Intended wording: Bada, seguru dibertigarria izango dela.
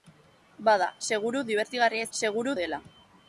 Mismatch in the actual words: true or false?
true